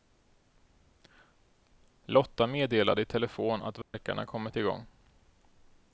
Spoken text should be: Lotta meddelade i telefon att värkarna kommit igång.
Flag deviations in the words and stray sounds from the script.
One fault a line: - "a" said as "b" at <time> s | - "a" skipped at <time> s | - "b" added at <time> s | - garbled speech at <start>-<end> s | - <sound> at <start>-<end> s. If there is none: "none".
- dropout at 3.8-3.9 s